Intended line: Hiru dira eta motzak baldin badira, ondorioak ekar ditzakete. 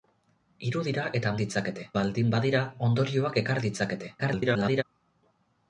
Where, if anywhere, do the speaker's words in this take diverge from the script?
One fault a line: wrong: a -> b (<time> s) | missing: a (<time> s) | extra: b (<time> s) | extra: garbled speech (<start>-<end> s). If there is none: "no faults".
wrong: motzak -> ditzakete (1.4 s)
extra: garbled speech (4.2-4.8 s)